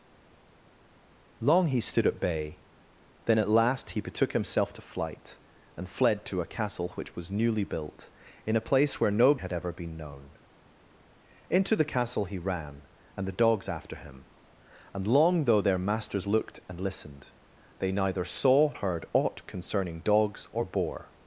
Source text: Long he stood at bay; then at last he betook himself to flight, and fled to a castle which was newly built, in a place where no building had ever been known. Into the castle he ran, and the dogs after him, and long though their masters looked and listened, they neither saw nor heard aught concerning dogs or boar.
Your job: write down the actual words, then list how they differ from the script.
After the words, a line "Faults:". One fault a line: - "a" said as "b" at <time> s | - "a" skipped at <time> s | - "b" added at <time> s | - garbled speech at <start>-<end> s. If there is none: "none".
Long he stood at bay; then at last he betook himself to flight, and fled to a castle which was newly built, in a place where no had ever been known. Into the castle he ran, and the dogs after him, and long though their masters looked and listened, they neither saw heard aught concerning dogs or boar.
Faults:
- "building" skipped at 9.4 s
- "nor" skipped at 18.7 s